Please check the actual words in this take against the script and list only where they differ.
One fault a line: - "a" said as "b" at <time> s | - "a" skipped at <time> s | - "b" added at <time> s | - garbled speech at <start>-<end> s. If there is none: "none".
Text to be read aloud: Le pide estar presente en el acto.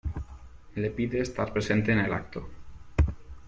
none